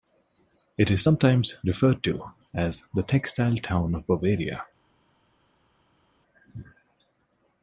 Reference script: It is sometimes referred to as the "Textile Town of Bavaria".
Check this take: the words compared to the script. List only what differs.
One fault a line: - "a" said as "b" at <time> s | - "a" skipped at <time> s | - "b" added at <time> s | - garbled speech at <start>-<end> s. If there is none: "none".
none